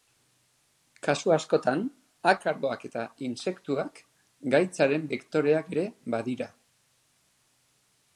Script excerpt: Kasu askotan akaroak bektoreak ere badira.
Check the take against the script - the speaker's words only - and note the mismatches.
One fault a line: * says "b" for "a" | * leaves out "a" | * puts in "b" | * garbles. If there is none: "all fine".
* puts in "eta intsektuak gaitzaren"